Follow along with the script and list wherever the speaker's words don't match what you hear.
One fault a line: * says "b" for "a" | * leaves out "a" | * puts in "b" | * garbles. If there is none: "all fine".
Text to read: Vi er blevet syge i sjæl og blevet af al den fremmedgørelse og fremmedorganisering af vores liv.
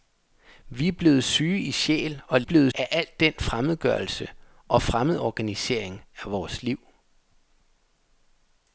all fine